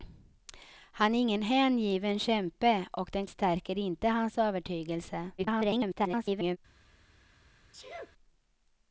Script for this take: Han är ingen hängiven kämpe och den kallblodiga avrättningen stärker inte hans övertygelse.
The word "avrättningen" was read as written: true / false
false